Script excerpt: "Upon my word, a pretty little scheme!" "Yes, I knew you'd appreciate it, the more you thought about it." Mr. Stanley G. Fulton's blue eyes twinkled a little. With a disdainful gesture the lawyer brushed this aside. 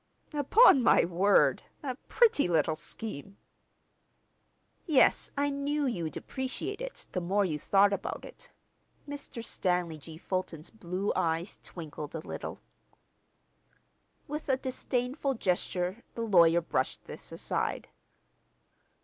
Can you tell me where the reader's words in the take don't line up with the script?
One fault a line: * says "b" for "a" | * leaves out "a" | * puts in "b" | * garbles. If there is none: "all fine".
all fine